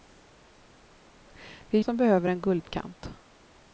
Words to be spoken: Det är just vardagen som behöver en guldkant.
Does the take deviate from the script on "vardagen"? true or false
true